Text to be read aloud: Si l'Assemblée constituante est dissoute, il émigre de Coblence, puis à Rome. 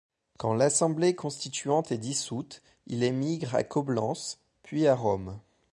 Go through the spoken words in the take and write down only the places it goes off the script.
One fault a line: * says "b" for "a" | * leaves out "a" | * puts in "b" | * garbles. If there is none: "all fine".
* says "Quand" for "Si"
* says "à" for "de"